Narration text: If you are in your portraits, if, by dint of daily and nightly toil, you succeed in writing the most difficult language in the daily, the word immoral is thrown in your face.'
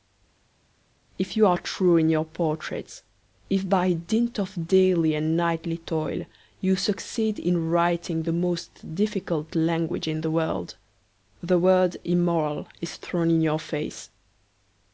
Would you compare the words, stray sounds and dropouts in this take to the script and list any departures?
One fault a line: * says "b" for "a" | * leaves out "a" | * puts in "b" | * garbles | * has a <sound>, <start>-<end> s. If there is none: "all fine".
* puts in "true"
* says "world" for "daily"